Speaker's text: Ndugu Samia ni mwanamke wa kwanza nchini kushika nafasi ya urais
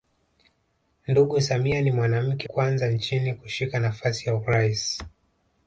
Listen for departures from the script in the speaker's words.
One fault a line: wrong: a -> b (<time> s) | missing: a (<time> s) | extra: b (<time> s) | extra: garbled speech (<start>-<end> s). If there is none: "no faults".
missing: wa (2.5 s)